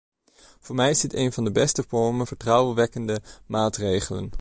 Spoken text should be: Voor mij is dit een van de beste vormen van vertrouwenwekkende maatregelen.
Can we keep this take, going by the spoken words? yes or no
no